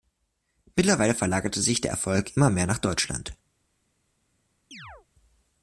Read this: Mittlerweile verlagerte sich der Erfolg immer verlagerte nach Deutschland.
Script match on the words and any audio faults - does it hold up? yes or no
no